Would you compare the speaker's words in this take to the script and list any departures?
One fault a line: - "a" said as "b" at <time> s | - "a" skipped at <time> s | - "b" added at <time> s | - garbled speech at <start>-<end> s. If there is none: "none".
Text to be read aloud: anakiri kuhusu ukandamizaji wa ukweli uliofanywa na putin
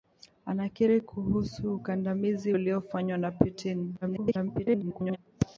- "wa ukweli" skipped at 2.5 s
- garbled speech at 4.0-5.2 s